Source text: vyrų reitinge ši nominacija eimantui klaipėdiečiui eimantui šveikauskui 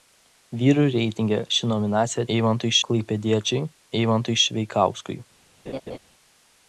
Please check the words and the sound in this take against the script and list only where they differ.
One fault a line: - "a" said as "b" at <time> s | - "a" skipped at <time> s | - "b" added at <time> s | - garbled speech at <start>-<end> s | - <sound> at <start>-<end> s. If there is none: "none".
- laugh at 5.7-6.0 s